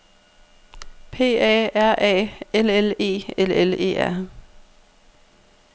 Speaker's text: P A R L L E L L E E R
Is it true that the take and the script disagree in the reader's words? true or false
true